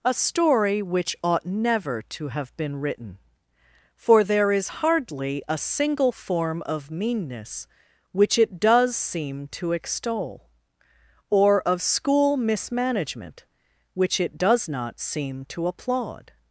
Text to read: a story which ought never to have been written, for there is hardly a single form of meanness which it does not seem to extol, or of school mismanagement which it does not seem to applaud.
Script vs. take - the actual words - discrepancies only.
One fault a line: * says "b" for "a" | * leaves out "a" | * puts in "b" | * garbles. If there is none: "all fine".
* leaves out "not"